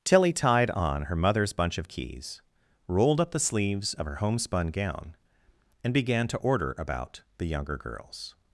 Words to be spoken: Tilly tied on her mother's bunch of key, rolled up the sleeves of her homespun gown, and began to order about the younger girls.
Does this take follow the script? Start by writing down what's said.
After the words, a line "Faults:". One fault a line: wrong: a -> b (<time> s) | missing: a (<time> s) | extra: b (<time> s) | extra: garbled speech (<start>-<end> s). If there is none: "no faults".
Tilly tied on her mother's bunch of keys, rolled up the sleeves of her homespun gown, and began to order about the younger girls.
Faults:
wrong: key -> keys (1.9 s)